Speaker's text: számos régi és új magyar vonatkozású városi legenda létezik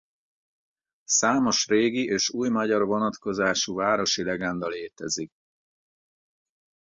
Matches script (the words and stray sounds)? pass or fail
pass